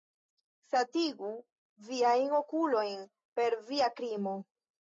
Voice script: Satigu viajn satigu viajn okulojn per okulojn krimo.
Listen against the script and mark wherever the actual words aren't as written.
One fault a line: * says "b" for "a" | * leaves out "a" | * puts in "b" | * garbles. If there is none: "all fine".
* leaves out "satigu viajn"
* says "via" for "okulojn"